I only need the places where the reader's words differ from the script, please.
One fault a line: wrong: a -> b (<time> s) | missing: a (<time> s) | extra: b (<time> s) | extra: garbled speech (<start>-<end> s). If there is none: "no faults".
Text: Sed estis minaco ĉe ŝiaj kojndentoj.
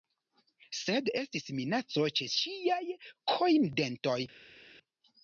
no faults